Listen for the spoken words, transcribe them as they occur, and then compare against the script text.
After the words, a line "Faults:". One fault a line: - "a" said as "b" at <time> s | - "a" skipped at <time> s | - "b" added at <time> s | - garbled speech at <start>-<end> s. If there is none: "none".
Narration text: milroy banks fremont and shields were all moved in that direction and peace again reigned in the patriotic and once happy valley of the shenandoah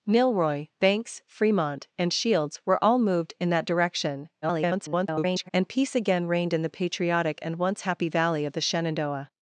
milroy banks fremont and shields were all moved in that direction [garbled] and peace again reigned in the patriotic and once happy valley of the shenandoah
Faults:
- garbled speech at 4.4-5.5 s